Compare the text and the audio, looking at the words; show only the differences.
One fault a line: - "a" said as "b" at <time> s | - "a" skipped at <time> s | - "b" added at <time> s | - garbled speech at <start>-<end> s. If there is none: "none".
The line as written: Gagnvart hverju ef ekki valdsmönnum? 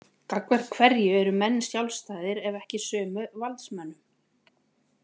- "eru menn sjálfstæðir" added at 1.2 s
- "sömu" added at 2.9 s